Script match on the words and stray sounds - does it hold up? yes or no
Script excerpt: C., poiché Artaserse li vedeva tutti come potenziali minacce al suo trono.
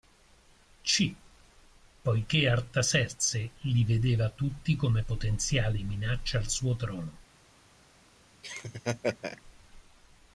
no